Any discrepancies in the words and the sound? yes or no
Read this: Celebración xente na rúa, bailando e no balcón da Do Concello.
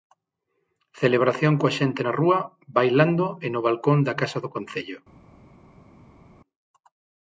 yes